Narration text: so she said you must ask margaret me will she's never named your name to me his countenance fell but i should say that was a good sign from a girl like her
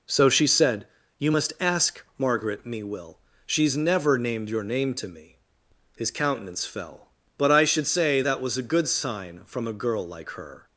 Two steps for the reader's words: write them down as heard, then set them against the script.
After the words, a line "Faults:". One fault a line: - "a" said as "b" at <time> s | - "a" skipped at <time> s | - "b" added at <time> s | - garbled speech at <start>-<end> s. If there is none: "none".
so she said you must ask margaret me will she's never named your name to me his countenance fell but i should say that was a good sign from a girl like her
Faults:
none